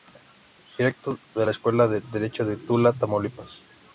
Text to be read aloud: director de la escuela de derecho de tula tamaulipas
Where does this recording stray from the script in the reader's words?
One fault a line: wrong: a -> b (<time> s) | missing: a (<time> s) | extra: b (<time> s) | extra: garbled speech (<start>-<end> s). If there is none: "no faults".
no faults